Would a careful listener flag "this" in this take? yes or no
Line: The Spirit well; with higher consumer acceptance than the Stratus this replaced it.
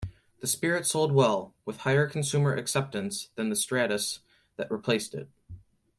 yes